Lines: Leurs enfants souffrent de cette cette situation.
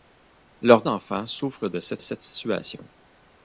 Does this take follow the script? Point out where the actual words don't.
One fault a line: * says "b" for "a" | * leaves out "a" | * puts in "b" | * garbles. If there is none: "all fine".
all fine